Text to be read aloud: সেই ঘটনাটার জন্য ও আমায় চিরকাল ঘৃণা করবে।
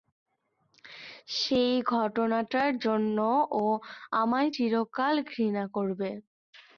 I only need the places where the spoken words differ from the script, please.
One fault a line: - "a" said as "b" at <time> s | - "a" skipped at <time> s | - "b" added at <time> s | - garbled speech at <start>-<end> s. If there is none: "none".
none